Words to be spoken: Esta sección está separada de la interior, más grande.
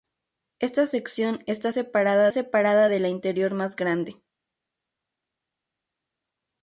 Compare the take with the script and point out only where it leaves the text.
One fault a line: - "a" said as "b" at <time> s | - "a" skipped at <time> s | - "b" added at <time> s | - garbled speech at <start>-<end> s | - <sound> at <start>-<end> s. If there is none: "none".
- "separada" added at 2.3 s